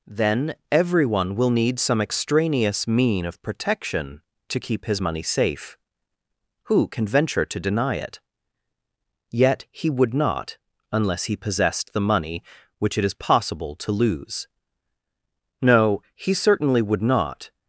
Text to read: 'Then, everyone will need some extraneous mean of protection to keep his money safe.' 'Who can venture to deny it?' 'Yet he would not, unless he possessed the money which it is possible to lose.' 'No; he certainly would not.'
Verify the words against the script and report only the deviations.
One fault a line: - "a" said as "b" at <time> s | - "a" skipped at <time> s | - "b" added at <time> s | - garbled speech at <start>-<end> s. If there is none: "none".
none